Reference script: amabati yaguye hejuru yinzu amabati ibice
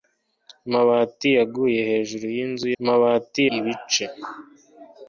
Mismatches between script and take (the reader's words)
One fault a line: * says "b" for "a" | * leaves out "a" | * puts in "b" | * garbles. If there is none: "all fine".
all fine